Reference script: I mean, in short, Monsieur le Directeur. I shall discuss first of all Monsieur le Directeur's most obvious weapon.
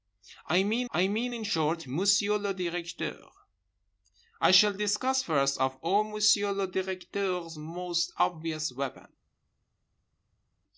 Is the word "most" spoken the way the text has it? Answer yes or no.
yes